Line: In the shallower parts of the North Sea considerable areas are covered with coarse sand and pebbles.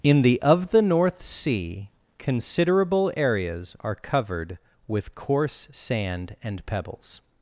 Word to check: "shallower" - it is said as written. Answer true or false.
false